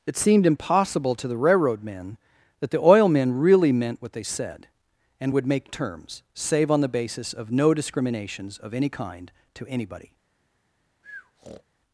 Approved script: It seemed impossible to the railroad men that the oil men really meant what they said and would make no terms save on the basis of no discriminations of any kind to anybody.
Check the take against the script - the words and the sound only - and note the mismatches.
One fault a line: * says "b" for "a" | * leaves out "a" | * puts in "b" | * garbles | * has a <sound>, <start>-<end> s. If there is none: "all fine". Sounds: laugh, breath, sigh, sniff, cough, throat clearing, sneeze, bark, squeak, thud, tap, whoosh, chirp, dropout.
* leaves out "no"
* has a breath, 11.0-11.6 s